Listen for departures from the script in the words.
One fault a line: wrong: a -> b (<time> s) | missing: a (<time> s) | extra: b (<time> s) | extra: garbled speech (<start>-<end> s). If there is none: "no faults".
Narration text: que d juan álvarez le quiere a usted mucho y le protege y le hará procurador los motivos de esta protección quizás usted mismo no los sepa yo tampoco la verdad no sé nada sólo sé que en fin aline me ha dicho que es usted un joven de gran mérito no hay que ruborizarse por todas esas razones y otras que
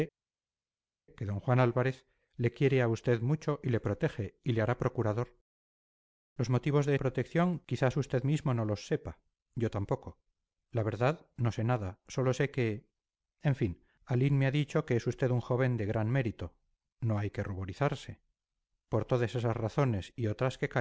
missing: esta (6.9 s)